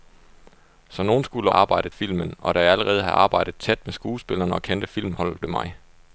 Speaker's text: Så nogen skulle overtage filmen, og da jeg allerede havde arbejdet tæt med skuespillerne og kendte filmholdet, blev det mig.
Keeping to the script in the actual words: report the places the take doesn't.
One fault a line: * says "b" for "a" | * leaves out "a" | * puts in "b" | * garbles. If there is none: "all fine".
* says "arbejdet" for "overtage"
* leaves out "blev"